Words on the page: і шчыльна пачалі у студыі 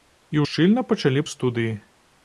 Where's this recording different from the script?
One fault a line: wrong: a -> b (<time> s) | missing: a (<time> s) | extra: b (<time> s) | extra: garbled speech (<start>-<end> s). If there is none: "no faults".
no faults